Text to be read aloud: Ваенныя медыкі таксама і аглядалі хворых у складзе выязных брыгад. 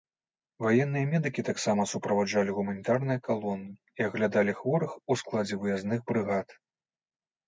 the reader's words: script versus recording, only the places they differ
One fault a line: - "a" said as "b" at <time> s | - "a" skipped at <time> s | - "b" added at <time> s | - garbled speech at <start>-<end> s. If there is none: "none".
- "суправаджалі гуманітарныя калоны" added at 1.9 s